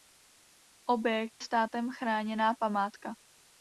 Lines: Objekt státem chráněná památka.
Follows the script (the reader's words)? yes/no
yes